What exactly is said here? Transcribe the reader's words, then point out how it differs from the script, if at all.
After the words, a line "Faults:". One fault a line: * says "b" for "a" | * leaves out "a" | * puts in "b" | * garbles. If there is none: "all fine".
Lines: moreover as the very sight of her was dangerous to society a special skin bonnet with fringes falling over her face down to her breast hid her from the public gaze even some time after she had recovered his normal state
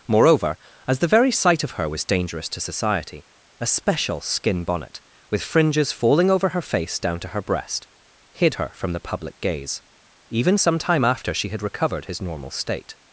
moreover as the very sight of her was dangerous to society a special skin bonnet with fringes falling over her face down to her breast hid her from the public gaze even some time after she had recovered his normal state
Faults:
all fine